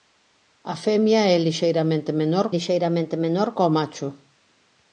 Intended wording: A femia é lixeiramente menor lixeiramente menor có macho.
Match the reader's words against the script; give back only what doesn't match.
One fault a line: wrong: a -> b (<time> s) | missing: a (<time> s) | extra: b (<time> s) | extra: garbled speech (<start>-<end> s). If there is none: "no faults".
no faults